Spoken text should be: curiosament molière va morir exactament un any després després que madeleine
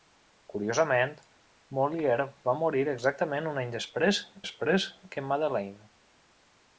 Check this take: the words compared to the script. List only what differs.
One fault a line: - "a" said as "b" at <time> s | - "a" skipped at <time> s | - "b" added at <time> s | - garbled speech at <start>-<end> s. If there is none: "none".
none